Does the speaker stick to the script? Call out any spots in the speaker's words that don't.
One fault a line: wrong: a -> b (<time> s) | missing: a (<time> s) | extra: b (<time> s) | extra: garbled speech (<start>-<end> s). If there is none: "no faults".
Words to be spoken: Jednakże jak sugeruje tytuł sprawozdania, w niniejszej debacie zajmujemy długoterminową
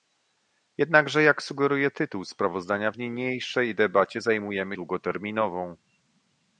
no faults